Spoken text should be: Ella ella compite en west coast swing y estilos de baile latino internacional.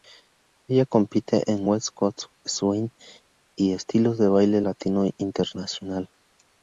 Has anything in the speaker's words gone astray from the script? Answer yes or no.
yes